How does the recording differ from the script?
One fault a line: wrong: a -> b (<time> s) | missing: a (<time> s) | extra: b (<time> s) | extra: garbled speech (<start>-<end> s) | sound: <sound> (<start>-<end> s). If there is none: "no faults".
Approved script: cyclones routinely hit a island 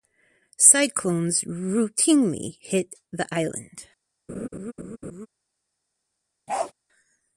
wrong: a -> the (3.1 s)
sound: laugh (4.3-5.3 s)
sound: bark (6.5-6.7 s)